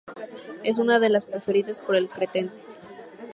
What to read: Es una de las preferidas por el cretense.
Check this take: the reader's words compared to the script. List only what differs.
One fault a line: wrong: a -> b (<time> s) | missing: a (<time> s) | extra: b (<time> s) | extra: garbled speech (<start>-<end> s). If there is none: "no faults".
no faults